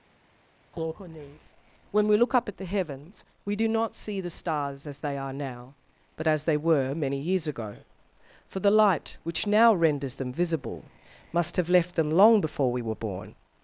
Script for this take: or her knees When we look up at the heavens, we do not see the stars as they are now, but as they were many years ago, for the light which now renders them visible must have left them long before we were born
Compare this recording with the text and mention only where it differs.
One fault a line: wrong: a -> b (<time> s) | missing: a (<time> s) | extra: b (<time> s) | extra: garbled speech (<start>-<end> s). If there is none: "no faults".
no faults